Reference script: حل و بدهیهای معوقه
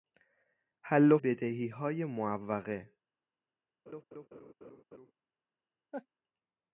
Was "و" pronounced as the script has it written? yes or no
yes